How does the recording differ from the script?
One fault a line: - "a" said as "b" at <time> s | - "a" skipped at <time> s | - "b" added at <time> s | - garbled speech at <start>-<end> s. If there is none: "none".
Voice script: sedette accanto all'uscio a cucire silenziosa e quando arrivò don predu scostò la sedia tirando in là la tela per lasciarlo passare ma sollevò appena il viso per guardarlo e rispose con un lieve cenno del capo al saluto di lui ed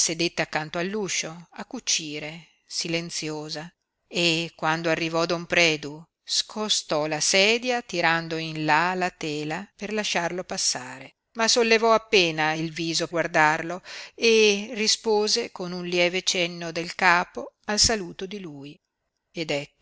- "per" skipped at 13.1 s